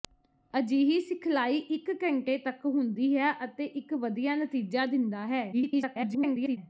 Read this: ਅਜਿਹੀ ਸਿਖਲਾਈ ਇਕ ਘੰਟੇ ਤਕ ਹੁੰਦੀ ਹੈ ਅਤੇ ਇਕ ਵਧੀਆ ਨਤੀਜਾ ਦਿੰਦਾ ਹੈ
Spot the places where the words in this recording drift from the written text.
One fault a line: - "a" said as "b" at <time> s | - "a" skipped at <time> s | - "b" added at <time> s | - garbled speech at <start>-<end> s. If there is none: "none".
- garbled speech at 5.5-6.6 s